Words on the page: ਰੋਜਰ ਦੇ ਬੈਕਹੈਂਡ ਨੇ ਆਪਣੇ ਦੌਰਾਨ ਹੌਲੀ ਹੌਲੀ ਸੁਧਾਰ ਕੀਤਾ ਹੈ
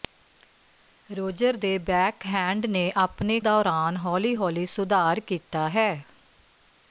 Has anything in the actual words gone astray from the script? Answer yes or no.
no